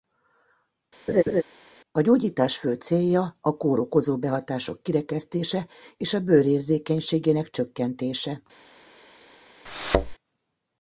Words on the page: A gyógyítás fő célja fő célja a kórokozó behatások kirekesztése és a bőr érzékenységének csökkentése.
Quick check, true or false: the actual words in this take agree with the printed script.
false